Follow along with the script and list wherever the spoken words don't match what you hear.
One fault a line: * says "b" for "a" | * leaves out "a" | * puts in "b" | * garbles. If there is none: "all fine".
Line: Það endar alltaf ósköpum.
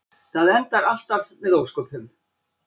* puts in "með"